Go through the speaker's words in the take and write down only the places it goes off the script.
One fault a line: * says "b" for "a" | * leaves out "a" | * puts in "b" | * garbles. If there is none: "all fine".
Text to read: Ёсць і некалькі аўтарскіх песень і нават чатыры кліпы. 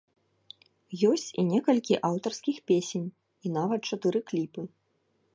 all fine